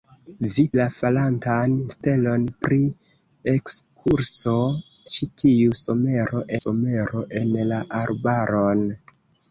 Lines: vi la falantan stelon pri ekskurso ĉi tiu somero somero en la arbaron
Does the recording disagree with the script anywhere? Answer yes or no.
no